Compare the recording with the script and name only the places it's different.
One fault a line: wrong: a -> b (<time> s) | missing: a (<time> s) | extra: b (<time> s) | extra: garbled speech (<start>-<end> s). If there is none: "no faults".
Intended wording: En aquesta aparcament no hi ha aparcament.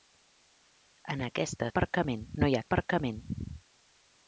no faults